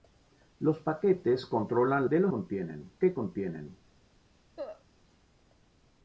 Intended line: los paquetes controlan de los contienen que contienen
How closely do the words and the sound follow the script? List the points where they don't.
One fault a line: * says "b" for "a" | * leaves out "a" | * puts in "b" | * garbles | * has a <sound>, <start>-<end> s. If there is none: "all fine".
* has a cough, 4.6-4.8 s